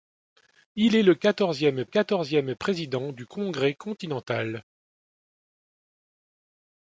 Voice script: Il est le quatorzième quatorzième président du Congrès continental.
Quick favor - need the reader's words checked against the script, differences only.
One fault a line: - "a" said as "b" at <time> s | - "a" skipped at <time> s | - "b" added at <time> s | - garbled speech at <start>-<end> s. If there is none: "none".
none